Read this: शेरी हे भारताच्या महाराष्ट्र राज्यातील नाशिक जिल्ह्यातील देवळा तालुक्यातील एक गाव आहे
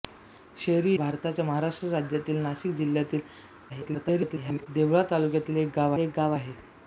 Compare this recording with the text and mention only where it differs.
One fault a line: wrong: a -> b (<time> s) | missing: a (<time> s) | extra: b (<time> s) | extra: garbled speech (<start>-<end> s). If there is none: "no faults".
missing: हे (0.9 s)
extra: garbled speech (3.7-4.7 s)
extra: एक गाव (6.0 s)